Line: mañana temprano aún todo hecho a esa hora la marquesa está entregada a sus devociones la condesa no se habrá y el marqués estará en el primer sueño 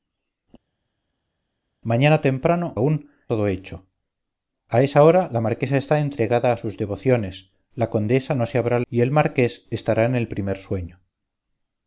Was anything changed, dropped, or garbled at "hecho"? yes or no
no